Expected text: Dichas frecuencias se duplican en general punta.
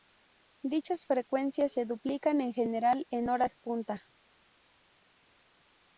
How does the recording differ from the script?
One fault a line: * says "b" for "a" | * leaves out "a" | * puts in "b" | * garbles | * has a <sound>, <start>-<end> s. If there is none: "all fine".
* puts in "en horas"